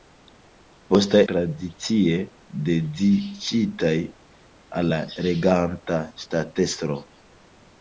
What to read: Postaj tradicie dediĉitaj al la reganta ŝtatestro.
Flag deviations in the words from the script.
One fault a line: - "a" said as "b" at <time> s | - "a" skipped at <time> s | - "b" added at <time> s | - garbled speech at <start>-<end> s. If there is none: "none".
none